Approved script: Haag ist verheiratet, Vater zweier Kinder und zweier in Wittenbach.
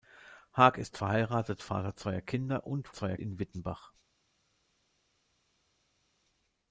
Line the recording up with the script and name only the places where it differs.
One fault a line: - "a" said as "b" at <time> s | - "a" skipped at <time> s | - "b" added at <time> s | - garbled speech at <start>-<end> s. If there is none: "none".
none